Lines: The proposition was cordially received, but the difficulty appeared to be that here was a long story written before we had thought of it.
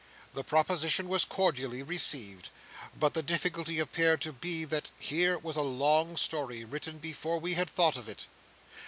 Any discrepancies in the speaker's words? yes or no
no